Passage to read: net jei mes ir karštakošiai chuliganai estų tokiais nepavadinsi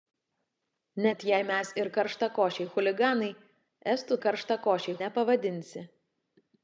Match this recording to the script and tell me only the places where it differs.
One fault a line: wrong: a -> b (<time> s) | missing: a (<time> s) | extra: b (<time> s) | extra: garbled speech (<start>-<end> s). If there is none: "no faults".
wrong: tokiais -> karštakošiai (4.3 s)